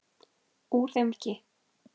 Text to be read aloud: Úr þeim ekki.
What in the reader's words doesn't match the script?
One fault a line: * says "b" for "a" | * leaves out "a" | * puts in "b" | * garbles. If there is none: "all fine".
all fine